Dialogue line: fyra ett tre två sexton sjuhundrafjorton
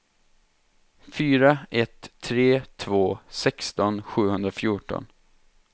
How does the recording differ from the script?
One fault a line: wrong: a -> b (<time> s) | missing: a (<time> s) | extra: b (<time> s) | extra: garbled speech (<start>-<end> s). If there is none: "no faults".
no faults